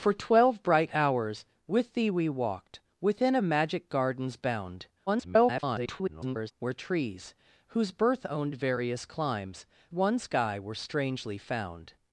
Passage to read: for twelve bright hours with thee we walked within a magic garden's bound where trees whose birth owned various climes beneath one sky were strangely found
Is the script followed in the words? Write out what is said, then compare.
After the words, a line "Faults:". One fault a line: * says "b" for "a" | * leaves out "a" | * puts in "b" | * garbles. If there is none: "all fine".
for twelve bright hours with thee we walked within a magic garden's bound [garbled] where trees whose birth owned various climes one sky were strangely found
Faults:
* garbles
* leaves out "beneath"